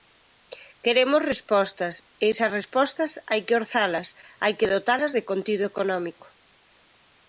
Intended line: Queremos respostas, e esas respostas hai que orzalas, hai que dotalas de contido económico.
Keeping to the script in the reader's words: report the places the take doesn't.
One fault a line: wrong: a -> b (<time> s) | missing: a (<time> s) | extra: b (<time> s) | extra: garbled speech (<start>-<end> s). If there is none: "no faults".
no faults